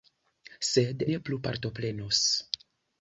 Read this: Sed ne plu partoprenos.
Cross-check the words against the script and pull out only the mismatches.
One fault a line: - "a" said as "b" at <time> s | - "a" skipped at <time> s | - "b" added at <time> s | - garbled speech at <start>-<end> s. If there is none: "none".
none